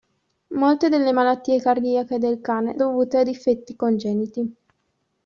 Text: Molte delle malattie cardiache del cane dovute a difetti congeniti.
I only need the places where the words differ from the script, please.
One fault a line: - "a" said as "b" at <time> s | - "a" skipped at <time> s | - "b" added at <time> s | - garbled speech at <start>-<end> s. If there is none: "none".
none